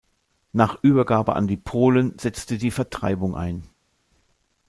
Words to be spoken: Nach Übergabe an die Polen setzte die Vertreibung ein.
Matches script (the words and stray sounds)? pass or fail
pass